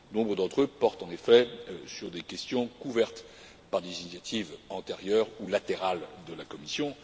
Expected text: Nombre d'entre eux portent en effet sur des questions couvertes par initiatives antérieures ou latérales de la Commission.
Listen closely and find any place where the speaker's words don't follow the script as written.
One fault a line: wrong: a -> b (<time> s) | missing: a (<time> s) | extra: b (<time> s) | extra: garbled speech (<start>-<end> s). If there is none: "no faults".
extra: des (3.8 s)